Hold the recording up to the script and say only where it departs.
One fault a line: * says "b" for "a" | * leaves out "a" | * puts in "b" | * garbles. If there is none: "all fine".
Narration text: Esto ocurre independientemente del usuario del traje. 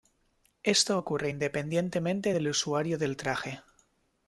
all fine